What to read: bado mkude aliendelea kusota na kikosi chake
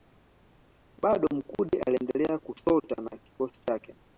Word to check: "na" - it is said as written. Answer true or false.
true